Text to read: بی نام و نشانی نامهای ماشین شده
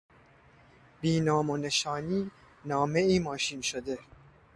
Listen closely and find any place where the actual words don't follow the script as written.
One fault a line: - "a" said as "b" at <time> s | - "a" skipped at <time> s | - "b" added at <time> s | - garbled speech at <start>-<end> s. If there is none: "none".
none